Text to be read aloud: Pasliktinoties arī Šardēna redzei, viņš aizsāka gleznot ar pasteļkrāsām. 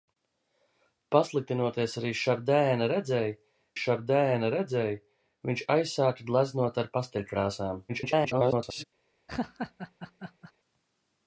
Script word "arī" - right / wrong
right